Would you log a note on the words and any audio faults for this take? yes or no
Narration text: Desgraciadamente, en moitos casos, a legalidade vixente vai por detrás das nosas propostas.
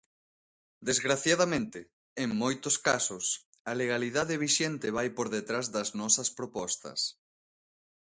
no